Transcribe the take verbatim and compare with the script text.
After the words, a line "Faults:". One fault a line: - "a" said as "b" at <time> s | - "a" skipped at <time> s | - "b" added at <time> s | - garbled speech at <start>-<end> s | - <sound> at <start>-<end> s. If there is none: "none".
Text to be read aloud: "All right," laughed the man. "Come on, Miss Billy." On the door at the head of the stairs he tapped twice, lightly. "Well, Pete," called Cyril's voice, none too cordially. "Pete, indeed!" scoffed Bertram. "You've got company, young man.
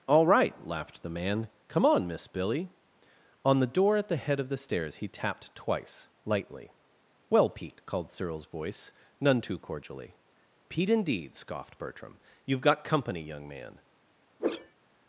"All right," laughed the man. "Come on, Miss Billy." On the door at the head of the stairs he tapped twice, lightly. "Well, Pete," called Cyril's voice, none too cordially. "Pete, indeed!" scoffed Bertram. "You've got company, young man.
Faults:
- whoosh at 14.4-14.7 s